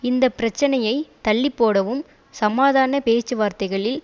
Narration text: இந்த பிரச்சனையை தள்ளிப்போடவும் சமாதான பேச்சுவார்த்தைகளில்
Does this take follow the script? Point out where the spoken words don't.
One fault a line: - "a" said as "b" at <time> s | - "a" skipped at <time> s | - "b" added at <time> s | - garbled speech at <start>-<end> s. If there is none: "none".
none